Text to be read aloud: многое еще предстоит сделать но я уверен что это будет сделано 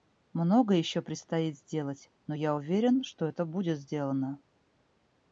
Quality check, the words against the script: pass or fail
pass